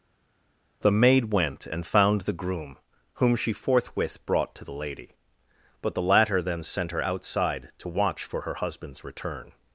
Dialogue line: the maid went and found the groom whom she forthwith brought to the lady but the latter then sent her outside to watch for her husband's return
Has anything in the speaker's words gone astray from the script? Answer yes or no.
no